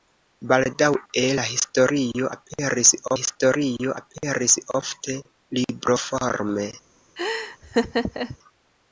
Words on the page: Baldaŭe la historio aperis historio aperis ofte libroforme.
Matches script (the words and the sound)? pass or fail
fail